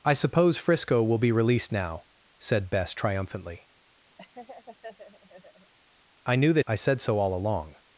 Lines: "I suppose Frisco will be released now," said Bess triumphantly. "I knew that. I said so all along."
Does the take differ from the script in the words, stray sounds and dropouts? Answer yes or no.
yes